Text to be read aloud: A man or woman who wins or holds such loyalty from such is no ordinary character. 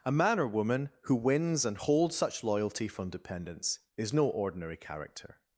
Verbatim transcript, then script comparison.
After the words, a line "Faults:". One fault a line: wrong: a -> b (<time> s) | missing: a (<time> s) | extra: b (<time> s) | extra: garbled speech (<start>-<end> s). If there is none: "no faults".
A man or woman who wins and holds such loyalty from dependents is no ordinary character.
Faults:
wrong: or -> and (1.6 s)
wrong: such -> dependents (3.1 s)